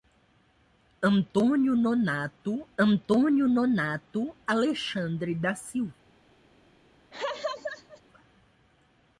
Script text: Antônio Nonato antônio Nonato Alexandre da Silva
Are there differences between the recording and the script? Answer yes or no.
no